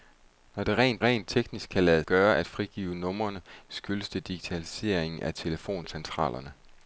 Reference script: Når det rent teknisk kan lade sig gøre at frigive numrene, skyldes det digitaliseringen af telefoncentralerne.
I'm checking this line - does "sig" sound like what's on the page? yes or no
no